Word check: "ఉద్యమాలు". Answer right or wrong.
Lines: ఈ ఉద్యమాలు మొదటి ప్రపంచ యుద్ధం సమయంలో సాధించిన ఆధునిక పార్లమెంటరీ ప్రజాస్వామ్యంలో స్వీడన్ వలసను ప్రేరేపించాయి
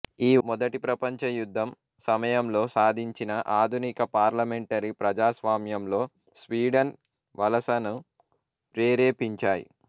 wrong